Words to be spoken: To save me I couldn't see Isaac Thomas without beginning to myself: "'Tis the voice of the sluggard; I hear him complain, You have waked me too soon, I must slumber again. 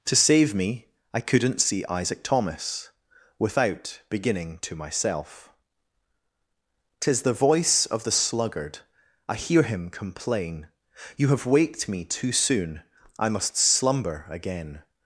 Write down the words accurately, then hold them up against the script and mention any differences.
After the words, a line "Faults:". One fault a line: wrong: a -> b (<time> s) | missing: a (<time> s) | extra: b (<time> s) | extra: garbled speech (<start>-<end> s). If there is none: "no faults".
To save me I couldn't see Isaac Thomas without beginning to myself: "'Tis the voice of the sluggard; I hear him complain, You have waked me too soon, I must slumber again.
Faults:
no faults